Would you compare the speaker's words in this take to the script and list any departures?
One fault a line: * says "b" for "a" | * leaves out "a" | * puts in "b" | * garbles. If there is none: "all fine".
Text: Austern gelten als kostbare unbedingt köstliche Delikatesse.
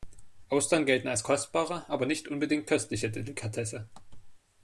* puts in "aber nicht"